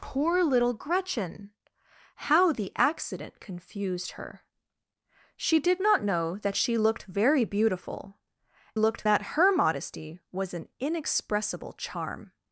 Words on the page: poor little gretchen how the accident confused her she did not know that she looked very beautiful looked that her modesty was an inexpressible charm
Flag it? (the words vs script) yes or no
no